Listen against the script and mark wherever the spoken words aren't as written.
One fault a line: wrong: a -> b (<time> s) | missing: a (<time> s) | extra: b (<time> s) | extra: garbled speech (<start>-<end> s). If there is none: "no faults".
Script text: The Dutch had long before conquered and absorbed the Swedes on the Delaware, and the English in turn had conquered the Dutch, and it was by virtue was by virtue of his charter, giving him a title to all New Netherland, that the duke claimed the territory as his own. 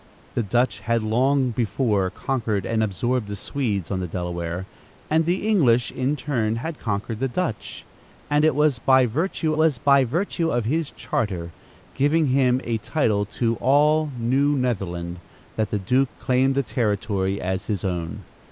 no faults